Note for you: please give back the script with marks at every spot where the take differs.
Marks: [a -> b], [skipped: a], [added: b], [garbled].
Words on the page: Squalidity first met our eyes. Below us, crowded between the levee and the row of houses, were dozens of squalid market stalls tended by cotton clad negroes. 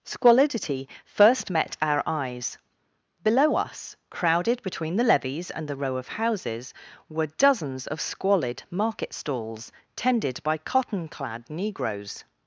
Squalidity first met our eyes. Below us, crowded between the [levee -> levees] and the row of houses, were dozens of squalid market stalls tended by cotton clad negroes.